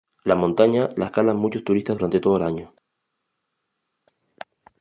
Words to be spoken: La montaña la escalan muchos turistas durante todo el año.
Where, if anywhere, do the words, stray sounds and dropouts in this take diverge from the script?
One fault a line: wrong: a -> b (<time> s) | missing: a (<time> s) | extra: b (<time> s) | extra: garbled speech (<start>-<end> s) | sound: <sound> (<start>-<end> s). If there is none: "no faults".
no faults